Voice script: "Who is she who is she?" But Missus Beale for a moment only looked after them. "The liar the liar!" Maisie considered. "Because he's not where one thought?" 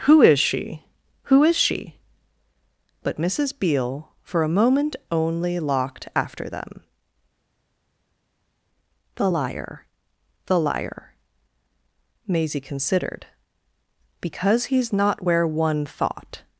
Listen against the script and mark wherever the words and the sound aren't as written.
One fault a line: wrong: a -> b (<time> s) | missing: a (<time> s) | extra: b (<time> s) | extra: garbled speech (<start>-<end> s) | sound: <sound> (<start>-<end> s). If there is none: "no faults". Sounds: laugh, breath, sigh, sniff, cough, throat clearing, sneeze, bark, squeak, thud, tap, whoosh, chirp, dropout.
wrong: looked -> locked (5.6 s)